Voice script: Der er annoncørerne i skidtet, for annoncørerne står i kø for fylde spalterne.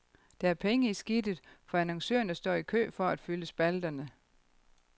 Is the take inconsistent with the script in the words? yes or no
yes